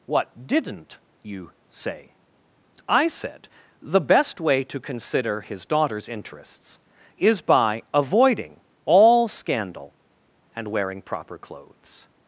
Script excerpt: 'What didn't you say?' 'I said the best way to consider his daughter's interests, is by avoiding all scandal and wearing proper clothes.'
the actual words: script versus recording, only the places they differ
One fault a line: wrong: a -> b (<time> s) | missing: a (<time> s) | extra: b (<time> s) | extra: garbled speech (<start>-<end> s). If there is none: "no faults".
no faults